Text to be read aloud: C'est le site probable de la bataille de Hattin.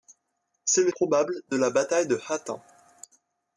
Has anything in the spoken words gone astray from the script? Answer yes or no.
yes